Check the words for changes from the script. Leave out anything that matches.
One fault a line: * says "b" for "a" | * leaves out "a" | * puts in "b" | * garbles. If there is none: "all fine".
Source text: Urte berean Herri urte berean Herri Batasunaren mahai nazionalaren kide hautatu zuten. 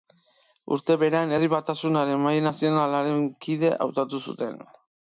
* leaves out "urte berean Herri"